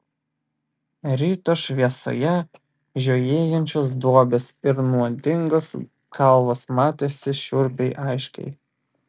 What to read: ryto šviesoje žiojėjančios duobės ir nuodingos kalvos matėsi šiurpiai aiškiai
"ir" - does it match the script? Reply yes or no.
yes